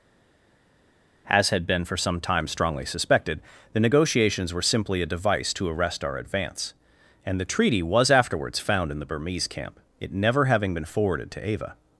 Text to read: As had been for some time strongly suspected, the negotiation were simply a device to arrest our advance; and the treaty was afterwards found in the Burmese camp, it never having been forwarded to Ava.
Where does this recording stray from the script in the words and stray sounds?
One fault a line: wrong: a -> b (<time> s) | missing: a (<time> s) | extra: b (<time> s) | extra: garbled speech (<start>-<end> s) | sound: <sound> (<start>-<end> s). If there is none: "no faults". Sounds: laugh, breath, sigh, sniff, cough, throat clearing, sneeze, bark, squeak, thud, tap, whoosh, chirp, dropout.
wrong: negotiation -> negotiations (3.8 s)